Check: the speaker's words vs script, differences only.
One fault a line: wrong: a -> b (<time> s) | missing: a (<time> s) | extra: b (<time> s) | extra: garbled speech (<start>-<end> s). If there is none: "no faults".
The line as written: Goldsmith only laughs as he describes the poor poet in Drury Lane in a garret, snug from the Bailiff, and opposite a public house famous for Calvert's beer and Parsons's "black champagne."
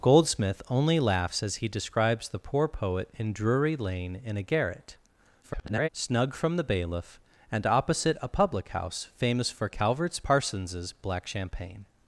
extra: garbled speech (5.4-5.9 s)
missing: beer and (10.2 s)